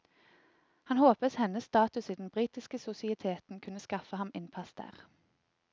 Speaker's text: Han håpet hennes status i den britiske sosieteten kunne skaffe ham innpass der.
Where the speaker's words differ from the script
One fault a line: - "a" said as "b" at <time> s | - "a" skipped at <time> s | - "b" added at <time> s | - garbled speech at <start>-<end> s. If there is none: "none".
none